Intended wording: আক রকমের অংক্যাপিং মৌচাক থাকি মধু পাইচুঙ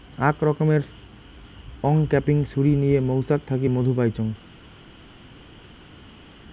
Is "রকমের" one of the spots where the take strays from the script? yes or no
no